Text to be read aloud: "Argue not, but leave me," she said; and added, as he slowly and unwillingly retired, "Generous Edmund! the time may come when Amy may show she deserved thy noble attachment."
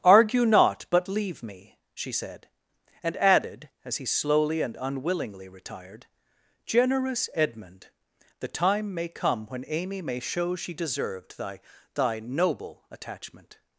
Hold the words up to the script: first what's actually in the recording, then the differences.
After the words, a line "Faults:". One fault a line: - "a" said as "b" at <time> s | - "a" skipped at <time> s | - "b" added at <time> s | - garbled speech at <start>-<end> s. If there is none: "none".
"Argue not, but leave me," she said; and added, as he slowly and unwillingly retired, "Generous Edmund! the time may come when Amy may show she deserved thy thy noble attachment."
Faults:
- "thy" added at 12.0 s